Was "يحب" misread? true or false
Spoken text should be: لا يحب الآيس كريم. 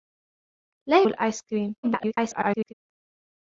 true